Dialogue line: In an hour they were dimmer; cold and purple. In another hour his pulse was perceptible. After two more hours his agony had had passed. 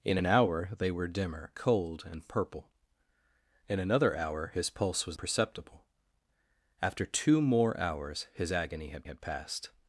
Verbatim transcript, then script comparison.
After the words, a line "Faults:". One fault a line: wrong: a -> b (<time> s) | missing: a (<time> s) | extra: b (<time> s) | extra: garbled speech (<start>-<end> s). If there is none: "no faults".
In an hour they were dimmer; cold and purple. In another hour his pulse was perceptible. After two more hours his agony had had passed.
Faults:
no faults